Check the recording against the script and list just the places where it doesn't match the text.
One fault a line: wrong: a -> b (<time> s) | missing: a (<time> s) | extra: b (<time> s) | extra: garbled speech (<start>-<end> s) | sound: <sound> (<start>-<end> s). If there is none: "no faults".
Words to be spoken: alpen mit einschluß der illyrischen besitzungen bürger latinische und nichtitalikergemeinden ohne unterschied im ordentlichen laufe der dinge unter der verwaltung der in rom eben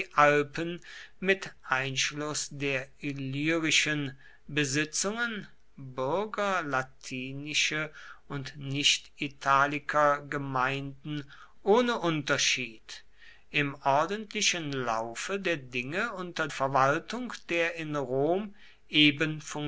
missing: der (16.5 s)